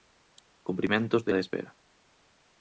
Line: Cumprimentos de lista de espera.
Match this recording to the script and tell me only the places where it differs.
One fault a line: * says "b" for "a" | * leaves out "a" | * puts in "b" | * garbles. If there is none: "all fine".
* leaves out "lista"